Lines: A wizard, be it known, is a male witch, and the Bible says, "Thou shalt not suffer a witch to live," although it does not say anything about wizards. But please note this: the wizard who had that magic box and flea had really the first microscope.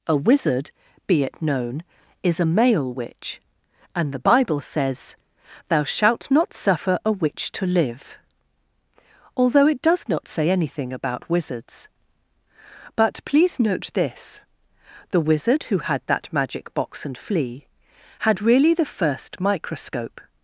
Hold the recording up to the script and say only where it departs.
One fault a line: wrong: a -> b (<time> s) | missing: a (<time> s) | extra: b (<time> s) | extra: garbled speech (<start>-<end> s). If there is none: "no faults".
no faults